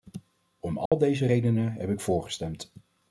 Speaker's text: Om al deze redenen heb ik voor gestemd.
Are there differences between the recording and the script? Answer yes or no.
no